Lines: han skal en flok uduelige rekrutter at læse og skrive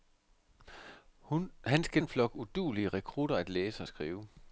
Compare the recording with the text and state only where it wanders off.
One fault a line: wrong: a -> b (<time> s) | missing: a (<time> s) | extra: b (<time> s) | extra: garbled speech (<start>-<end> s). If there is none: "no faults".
no faults